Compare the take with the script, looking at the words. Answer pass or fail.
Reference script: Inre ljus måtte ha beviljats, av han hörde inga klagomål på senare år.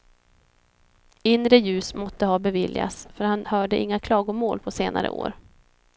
fail